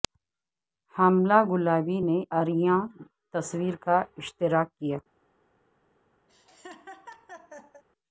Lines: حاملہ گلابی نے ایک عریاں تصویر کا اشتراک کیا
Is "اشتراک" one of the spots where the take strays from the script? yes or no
no